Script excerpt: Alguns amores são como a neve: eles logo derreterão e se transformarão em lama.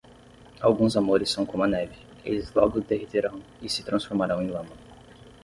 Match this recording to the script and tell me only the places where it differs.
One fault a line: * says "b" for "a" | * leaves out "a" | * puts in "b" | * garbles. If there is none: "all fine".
all fine